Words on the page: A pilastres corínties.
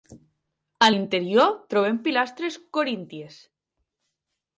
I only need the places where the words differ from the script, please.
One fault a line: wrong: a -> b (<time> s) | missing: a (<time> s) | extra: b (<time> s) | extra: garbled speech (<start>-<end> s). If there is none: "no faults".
extra: l'interior trobem (0.9 s)